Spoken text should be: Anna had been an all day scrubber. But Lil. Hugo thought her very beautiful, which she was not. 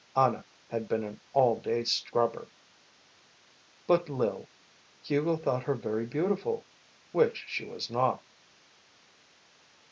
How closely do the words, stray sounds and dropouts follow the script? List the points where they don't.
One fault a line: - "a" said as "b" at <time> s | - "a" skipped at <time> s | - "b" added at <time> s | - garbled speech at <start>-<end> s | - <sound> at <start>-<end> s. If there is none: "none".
none